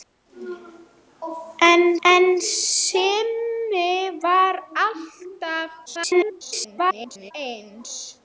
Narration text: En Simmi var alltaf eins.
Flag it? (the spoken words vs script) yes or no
yes